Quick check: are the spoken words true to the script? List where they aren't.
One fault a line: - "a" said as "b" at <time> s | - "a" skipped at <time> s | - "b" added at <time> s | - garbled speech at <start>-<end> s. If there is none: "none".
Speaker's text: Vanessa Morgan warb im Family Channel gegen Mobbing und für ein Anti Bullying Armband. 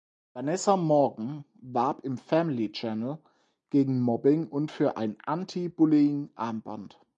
none